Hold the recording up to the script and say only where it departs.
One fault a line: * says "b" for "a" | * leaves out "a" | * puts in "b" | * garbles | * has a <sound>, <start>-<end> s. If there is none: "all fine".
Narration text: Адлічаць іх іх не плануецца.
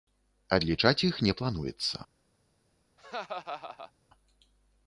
* leaves out "іх"
* has a laugh, 3.0-3.9 s